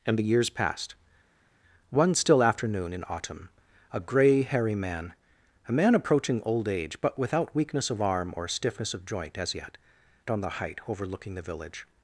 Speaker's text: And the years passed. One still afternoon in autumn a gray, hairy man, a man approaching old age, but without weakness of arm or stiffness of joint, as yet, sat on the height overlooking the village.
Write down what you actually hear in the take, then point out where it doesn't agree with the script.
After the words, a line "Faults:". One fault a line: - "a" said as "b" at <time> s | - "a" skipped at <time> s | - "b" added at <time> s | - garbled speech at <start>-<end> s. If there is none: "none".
And the years passed. One still afternoon in autumn a gray, hairy man, a man approaching old age, but without weakness of arm or stiffness of joint, as yet, on the height overlooking the village.
Faults:
- "sat" skipped at 9.8 s